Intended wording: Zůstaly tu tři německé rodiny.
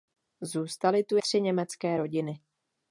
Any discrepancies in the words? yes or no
no